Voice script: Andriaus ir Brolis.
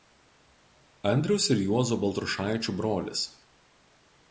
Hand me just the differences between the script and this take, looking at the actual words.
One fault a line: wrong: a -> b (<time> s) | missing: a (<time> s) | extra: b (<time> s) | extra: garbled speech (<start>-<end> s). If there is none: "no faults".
extra: Juozo Baltrušaičių (1.7 s)